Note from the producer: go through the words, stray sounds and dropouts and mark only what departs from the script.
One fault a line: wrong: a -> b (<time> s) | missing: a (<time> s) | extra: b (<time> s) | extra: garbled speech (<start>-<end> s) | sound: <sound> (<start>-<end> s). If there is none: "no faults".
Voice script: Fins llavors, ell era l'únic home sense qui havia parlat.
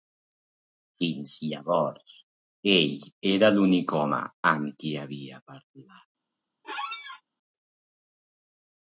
wrong: sense -> amb (4.5 s)
sound: squeak (6.6-7.2 s)